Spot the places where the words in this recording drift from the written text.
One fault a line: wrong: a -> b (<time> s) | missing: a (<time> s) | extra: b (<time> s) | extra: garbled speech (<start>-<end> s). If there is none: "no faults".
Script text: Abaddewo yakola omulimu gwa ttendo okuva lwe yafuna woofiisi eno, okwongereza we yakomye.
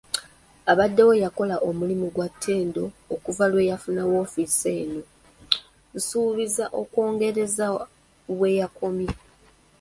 extra: nsuubiza (5.9 s)